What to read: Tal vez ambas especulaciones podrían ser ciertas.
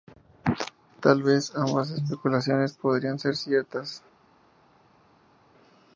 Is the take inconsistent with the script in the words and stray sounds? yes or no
no